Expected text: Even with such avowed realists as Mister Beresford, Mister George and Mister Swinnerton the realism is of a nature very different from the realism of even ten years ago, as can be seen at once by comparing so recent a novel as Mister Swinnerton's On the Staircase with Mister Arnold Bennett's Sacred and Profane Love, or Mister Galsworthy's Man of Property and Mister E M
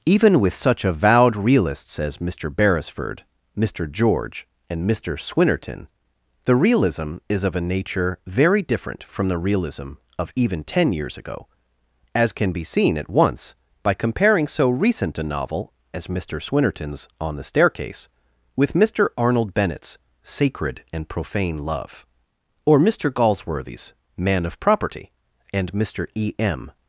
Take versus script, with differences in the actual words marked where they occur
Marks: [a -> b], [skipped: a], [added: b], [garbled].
Even with such avowed realists as Mister Beresford, Mister George and Mister Swinnerton the realism is of a nature very different from the realism of even ten years ago, as can be seen at once by comparing so recent a novel as Mister Swinnerton's On the Staircase with Mister Arnold Bennett's Sacred and Profane Love, or Mister Galsworthy's Man of Property and Mister E M